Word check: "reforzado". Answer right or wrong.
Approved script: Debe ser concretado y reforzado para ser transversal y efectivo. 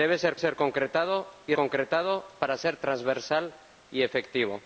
wrong